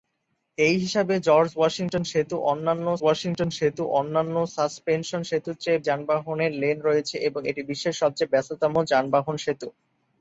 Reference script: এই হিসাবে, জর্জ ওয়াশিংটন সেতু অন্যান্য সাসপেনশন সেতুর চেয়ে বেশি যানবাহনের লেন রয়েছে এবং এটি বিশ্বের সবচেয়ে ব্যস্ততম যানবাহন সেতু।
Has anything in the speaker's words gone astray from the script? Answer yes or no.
yes